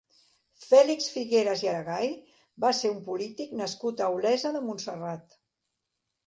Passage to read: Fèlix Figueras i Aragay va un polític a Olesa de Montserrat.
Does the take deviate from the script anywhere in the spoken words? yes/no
yes